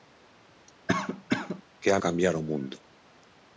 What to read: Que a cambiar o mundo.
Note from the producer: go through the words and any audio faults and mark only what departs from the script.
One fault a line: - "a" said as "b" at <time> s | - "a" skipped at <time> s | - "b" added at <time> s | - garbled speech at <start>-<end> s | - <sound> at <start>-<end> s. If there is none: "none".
- cough at 0.9-1.6 s